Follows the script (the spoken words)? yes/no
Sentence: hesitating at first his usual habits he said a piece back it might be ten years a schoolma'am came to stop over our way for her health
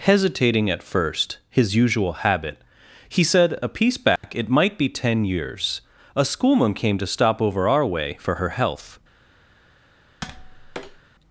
no